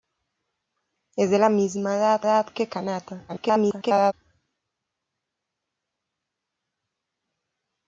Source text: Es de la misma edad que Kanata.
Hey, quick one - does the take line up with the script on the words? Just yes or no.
no